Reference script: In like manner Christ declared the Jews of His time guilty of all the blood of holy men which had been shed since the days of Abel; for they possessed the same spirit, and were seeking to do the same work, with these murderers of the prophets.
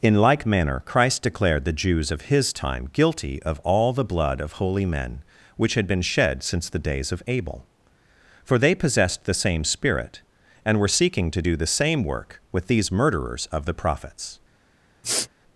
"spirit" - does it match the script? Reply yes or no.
yes